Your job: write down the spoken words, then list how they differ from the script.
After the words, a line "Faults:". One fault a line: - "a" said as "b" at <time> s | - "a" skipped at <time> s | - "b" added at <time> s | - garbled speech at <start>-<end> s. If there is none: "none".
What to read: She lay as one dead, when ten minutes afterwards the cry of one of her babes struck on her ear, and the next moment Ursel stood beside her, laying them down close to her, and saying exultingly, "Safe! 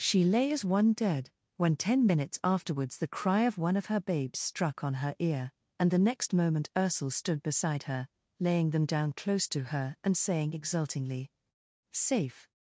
She lay as one dead, when ten minutes afterwards the cry of one of her babes struck on her ear, and the next moment Ursel stood beside her, laying them down close to her, and saying exultingly, "Safe!
Faults:
none